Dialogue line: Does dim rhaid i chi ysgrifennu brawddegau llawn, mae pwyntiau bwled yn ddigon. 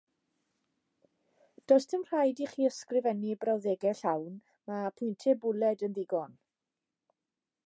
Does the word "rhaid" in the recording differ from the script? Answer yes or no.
no